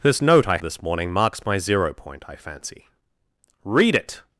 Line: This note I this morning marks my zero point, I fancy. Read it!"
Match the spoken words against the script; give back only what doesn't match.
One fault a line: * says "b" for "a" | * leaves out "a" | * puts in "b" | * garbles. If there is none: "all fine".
all fine